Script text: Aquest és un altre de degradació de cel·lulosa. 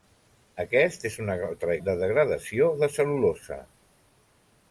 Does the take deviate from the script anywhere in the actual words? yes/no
no